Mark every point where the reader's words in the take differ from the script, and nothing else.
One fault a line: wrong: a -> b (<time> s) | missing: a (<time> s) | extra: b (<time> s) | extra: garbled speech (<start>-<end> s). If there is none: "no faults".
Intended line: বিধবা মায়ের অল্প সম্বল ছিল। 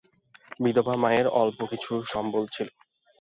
extra: কিছু (1.7 s)